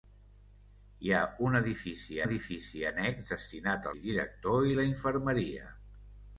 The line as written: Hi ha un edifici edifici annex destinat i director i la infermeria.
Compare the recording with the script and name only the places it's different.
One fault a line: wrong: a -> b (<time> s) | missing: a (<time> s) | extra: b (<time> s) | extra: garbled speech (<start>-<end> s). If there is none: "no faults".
no faults